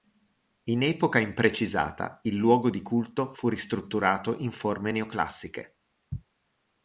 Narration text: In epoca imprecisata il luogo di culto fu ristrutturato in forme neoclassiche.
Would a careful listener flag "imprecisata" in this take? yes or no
no